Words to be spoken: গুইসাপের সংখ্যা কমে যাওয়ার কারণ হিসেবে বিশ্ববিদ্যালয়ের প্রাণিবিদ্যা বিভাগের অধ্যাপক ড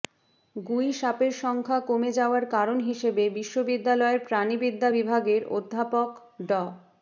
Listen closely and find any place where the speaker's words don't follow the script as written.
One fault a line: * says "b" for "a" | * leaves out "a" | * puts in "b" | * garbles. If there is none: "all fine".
all fine